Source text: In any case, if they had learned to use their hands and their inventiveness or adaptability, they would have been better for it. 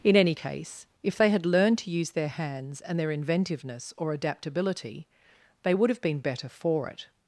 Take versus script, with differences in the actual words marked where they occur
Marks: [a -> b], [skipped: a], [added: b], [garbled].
In any case, if they had learned to use their hands and their inventiveness or adaptability, they would have been better for it.